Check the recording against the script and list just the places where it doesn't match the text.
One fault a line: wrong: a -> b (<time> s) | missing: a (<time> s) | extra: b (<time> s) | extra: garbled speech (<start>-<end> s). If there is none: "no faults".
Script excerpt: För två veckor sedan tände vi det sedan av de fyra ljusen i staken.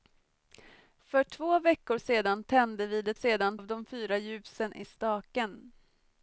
no faults